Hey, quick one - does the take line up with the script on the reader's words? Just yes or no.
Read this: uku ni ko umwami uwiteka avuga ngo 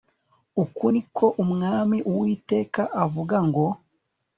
yes